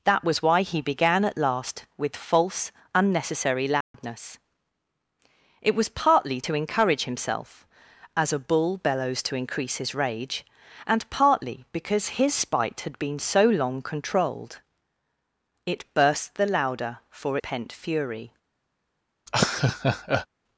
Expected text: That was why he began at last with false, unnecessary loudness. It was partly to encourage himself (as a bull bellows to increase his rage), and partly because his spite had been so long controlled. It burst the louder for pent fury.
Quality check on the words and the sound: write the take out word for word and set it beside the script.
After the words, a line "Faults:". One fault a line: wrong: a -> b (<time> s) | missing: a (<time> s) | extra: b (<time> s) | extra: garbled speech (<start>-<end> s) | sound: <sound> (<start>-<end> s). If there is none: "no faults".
That was why he began at last with false, unnecessary loudness. It was partly to encourage himself (as a bull bellows to increase his rage), and partly because his spite had been so long controlled. It burst the louder for pent fury.
Faults:
sound: dropout (3.8-3.9 s)
sound: laugh (19.3-20.3 s)